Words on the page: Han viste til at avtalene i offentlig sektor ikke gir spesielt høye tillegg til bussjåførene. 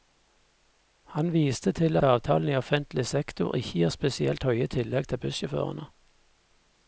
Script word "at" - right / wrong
wrong